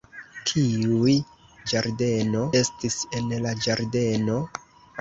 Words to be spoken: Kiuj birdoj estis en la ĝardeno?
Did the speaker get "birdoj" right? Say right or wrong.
wrong